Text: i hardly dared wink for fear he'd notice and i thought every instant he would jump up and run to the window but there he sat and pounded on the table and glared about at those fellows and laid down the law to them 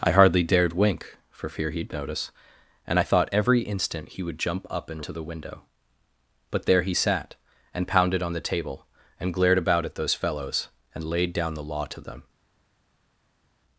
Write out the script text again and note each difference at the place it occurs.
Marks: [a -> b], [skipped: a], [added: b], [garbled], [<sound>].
i hardly dared wink for fear he'd notice and i thought every instant he would jump up and [skipped: run] to the window but there he sat and pounded on the table and glared about at those fellows and laid down the law to them